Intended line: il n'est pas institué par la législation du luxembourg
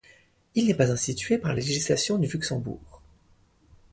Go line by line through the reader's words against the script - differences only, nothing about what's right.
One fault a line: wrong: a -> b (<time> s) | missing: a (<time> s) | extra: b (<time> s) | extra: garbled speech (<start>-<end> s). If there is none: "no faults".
no faults